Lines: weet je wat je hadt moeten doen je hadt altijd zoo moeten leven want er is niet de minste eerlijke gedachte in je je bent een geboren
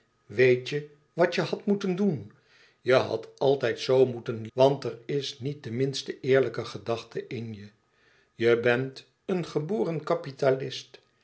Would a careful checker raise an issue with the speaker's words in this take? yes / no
yes